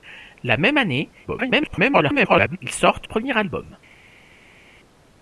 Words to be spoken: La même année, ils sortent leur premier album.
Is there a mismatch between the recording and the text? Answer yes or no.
yes